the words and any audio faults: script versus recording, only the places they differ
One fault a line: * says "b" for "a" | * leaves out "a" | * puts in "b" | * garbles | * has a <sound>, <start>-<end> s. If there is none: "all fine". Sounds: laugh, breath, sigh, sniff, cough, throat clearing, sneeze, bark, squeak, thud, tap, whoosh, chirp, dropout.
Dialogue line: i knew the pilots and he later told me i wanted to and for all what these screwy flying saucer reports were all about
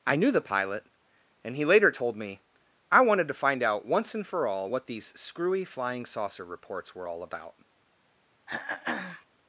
* says "pilot" for "pilots"
* puts in "find out once"
* has a throat clearing, 8.5-9.3 s